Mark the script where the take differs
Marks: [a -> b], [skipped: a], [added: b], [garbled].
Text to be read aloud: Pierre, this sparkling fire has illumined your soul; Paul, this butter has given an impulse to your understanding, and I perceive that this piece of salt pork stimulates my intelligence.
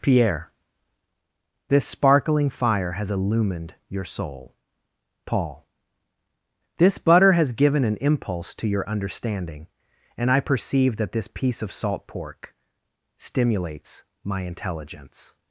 Pierre, this sparkling fire has illumined your soul; Paul, this butter has given an impulse to your understanding, and I perceive that this piece of salt pork stimulates my intelligence.